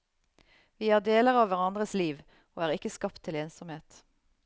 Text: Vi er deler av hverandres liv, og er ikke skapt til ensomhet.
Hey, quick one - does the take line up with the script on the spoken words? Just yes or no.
yes